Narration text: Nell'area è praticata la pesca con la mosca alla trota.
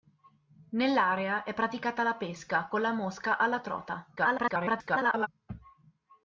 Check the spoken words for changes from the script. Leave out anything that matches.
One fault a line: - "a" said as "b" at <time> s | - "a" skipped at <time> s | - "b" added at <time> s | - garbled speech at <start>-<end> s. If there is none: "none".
- garbled speech at 4.2-5.3 s